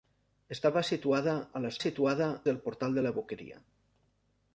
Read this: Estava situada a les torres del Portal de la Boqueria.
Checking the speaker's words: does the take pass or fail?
fail